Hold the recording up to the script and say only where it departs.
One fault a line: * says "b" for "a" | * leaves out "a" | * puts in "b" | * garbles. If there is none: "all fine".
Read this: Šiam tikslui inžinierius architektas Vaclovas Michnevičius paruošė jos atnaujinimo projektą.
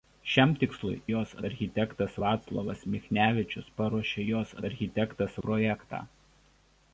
* says "jos" for "inžinierius"
* says "architektas" for "atnaujinimo"